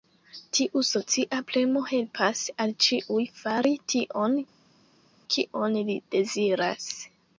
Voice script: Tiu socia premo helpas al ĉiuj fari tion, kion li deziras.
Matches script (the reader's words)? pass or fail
pass